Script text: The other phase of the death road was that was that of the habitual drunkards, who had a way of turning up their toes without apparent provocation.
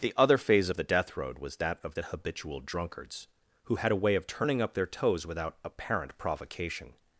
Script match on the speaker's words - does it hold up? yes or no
no